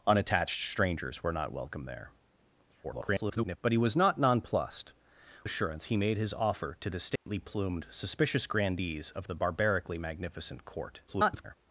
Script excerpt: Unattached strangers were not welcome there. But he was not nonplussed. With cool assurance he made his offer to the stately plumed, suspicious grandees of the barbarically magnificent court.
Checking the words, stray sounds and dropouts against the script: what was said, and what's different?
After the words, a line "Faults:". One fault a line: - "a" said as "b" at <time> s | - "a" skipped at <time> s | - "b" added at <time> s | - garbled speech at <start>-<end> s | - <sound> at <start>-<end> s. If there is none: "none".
Unattached strangers were not welcome there. [garbled] But he was not nonplussed. Assurance he made his offer to the stately plumed, suspicious grandees of the barbarically magnificent court. [garbled]
Faults:
- garbled speech at 2.8-3.6 s
- "With cool" skipped at 4.9 s
- dropout at 7.2-7.3 s
- garbled speech at 11.1-11.6 s